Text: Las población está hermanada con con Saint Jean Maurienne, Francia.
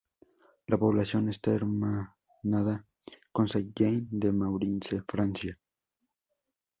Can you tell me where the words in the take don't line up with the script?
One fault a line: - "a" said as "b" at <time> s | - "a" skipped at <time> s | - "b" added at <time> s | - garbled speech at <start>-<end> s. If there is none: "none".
- "Las" said as "La" at 0.7 s
- "con" skipped at 3.5 s
- "de" added at 4.1 s